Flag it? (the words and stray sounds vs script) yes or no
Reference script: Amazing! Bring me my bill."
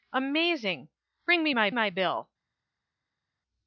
yes